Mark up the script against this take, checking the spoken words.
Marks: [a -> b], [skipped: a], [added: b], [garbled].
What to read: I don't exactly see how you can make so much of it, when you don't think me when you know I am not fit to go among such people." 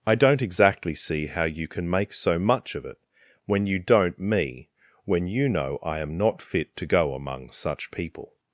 I don't exactly see how you can make so much of it, when you don't [skipped: think] me when you know I am not fit to go among such people."